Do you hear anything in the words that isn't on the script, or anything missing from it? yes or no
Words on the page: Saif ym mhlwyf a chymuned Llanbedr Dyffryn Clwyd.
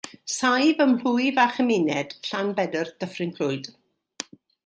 no